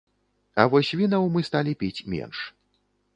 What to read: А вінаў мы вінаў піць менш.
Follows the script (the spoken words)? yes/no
no